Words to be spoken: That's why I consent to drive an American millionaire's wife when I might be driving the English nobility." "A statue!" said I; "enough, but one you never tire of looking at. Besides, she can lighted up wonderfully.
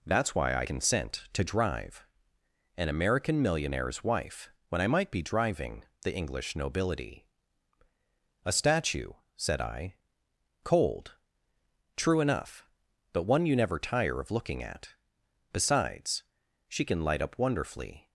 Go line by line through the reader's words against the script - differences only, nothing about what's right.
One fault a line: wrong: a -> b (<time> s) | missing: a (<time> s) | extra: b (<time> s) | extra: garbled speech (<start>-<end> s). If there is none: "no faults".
extra: cold True (10.6 s)
wrong: lighted -> light (17.0 s)